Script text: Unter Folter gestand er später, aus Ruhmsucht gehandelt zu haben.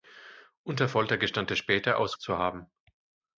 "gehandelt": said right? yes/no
no